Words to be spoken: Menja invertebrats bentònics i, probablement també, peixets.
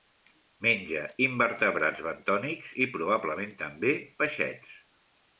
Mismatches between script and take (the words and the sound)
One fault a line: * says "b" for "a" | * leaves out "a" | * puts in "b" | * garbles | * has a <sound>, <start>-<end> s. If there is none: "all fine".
all fine